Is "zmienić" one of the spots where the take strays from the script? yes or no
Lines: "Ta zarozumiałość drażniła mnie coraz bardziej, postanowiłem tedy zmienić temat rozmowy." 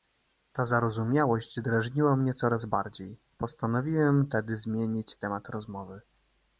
no